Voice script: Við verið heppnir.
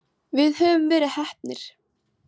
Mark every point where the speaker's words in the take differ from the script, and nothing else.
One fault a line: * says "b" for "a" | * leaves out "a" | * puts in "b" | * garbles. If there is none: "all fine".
* puts in "höfum"